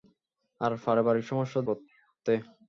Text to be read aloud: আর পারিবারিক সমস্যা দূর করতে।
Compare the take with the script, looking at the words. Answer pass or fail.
fail